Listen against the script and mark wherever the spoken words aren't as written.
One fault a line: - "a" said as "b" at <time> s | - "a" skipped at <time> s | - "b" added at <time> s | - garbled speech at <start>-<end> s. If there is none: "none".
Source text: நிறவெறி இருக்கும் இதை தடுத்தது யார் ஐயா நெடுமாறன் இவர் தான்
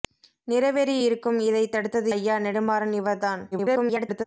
- "யார்" skipped at 2.1 s
- garbled speech at 3.5-4.2 s